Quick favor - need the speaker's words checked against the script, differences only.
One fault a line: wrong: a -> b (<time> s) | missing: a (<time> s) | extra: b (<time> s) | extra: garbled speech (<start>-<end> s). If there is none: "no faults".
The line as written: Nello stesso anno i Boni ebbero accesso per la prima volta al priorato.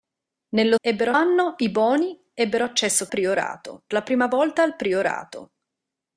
wrong: stesso -> ebbero (0.8 s)
wrong: per -> priorato (3.1 s)